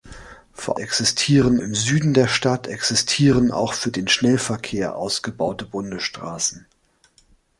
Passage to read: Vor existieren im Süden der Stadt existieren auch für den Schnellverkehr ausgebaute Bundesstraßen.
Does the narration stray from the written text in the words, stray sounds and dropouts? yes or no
no